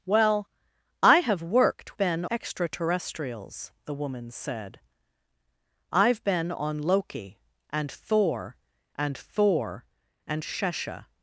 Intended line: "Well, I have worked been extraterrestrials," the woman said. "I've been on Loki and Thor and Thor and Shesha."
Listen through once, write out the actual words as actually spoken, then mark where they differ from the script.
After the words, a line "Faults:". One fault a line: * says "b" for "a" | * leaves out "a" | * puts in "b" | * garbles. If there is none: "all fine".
"Well, I have worked been extraterrestrials," the woman said. "I've been on Loki and Thor and Thor and Shesha."
Faults:
all fine